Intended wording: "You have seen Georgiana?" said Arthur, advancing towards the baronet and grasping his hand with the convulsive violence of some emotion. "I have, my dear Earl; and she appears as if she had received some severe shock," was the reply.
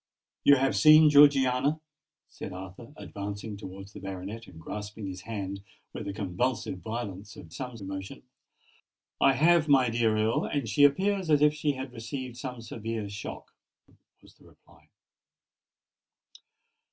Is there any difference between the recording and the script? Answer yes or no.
no